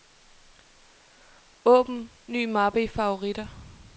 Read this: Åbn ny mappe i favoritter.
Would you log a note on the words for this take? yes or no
no